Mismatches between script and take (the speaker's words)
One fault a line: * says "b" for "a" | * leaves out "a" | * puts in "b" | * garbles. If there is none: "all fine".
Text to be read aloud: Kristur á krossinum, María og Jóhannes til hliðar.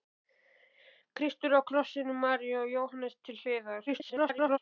* garbles